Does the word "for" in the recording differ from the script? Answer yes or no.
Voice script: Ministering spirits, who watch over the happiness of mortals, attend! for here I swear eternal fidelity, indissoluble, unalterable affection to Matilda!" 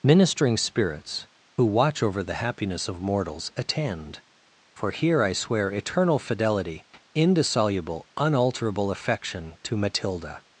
no